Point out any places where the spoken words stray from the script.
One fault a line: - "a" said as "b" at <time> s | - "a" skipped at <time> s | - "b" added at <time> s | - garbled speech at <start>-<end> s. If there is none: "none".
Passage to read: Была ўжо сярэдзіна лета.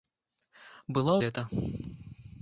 - "ўжо сярэдзіна" skipped at 1.1 s